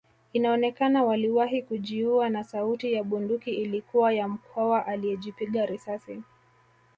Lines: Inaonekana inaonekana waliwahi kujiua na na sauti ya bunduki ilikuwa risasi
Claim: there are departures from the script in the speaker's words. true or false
true